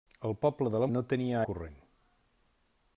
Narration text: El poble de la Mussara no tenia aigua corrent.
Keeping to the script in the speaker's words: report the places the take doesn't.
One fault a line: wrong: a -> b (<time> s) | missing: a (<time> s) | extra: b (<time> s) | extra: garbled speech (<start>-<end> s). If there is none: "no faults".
missing: Mussara (0.9 s)
missing: aigua (1.4 s)